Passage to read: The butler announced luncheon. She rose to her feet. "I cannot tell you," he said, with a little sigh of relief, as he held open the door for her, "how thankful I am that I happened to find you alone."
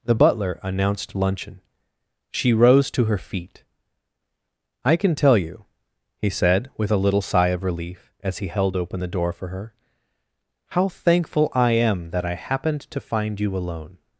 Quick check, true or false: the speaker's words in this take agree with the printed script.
false